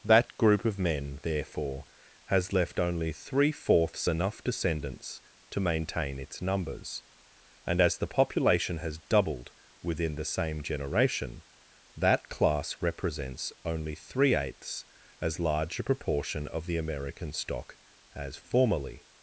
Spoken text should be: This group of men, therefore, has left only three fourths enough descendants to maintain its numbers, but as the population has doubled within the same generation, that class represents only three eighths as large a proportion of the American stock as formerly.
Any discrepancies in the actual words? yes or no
yes